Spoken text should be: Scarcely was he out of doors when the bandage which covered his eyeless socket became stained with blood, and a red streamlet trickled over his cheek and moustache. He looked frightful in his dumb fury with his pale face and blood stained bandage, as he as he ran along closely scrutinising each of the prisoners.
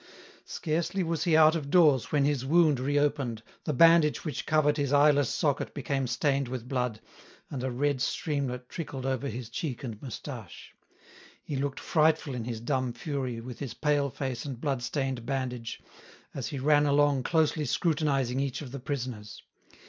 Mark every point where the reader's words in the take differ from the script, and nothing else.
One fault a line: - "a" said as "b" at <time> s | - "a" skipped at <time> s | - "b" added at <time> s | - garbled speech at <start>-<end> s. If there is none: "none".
- "his wound reopened" added at 2.2 s
- "as he" skipped at 16.6 s